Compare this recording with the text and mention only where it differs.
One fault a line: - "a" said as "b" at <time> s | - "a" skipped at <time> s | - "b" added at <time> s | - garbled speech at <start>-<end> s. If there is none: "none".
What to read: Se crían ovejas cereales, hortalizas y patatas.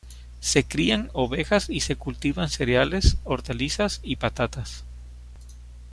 - "y se cultivan" added at 1.7 s